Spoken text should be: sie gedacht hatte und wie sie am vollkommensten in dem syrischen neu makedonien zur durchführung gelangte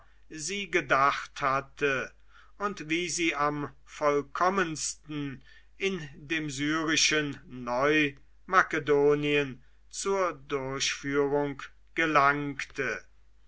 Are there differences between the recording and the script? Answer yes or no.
no